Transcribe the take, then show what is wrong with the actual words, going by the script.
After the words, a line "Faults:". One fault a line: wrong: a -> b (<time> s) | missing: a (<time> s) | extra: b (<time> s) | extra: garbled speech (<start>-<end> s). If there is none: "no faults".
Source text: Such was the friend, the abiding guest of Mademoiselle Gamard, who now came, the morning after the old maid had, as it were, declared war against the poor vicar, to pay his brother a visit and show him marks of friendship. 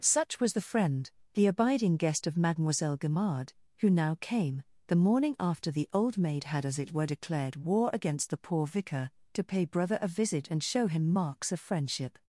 Such was the friend, the abiding guest of Mademoiselle Gamard, who now came, the morning after the old maid had, as it were, declared war against the poor vicar, to pay brother a visit and show him marks of friendship.
Faults:
missing: his (9.7 s)